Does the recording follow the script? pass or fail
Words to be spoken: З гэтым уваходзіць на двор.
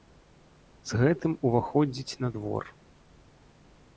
pass